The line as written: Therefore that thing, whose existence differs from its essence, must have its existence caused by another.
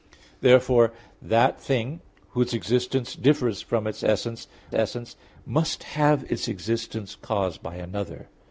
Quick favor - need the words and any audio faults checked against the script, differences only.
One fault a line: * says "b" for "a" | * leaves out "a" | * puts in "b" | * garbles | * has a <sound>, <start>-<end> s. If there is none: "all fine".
* puts in "essence"